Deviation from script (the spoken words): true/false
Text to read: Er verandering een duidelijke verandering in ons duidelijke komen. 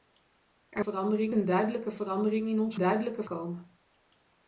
false